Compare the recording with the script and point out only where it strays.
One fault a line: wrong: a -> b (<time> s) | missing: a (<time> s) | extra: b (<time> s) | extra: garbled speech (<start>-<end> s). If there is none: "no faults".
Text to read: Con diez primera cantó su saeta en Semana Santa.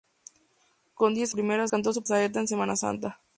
no faults